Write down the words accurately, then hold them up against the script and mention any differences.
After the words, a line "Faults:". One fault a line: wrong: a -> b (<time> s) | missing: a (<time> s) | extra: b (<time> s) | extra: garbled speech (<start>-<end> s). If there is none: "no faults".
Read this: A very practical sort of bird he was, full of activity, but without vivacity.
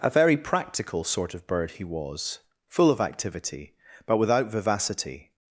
A very practical sort of bird he was, full of activity, but without vivacity.
Faults:
no faults